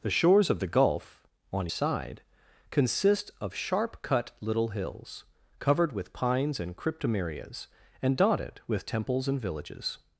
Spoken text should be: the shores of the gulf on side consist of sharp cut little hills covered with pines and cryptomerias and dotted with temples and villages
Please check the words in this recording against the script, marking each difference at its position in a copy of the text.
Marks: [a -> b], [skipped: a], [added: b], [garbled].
the shores of the gulf on side consist of sharp cut little hills covered with pines and cryptomerias and dotted with temples and villages